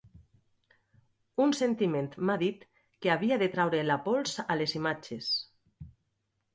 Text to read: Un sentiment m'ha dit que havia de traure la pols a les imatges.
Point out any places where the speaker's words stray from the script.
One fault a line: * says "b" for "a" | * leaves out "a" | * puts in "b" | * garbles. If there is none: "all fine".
all fine